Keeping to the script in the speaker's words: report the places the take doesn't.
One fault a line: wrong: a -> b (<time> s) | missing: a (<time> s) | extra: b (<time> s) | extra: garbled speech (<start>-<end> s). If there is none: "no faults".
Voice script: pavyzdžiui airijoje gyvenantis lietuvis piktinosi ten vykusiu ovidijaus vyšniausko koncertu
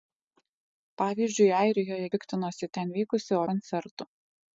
missing: gyvenantis lietuvis (2.1 s)
missing: ovidijaus vyšniausko (3.4 s)